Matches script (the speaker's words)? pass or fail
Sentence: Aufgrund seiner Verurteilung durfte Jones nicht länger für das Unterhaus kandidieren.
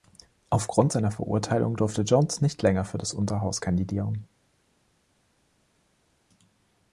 pass